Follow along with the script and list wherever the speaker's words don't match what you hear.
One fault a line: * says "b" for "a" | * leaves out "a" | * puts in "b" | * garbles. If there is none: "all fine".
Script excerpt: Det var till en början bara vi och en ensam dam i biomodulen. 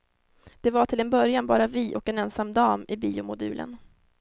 all fine